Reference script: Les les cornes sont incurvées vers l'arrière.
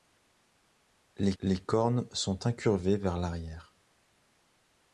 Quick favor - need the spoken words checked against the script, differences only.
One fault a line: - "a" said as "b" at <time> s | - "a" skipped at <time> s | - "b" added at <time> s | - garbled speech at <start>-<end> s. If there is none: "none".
none